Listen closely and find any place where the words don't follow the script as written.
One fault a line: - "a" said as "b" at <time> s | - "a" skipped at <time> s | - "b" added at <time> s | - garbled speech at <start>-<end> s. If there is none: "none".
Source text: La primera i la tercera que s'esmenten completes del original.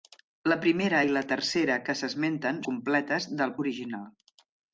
none